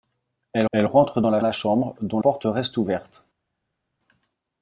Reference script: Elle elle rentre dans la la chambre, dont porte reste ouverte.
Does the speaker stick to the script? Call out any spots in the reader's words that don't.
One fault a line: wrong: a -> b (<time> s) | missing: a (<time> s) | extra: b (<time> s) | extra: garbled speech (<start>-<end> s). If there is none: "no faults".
no faults